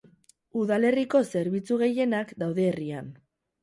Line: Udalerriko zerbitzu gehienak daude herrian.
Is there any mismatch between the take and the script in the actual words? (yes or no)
no